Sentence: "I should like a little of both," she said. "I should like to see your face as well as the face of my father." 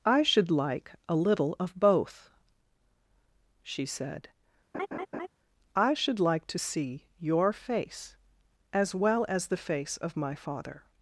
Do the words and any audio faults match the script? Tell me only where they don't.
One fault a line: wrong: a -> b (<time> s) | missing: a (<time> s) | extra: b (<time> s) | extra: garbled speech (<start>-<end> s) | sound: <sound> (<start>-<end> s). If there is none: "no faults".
sound: laugh (4.7-5.3 s)